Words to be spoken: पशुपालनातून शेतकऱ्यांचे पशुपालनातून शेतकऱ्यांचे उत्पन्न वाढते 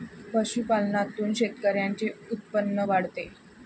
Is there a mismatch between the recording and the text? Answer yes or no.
yes